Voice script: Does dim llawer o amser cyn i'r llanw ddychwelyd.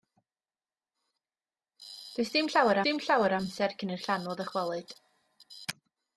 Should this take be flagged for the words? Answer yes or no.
yes